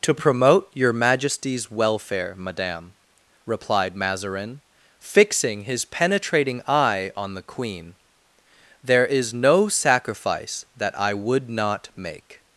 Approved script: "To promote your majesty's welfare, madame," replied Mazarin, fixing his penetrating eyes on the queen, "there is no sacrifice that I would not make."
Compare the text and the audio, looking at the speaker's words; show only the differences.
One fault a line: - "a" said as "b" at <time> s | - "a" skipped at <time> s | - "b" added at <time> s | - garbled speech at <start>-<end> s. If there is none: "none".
- "eyes" said as "eye" at 6.7 s